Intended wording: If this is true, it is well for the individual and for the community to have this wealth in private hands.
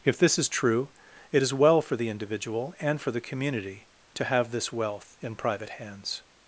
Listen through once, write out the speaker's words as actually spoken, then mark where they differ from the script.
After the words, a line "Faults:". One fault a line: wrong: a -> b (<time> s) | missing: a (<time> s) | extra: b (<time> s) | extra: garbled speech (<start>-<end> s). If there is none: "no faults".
If this is true, it is well for the individual and for the community to have this wealth in private hands.
Faults:
no faults